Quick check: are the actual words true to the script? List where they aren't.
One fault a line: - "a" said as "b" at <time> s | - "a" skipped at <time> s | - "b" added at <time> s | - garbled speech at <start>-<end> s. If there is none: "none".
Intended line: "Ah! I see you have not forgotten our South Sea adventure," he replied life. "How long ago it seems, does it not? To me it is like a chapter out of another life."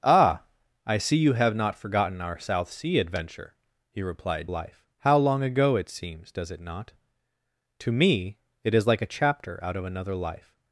none